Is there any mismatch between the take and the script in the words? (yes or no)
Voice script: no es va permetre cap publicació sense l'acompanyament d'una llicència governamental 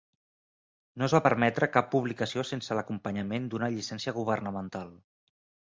no